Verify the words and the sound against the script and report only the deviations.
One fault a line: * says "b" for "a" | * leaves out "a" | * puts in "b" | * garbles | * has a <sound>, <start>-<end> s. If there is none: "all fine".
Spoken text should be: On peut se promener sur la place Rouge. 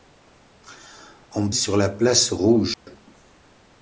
* leaves out "peut se promener"
* has a dropout, 2.7-2.9 s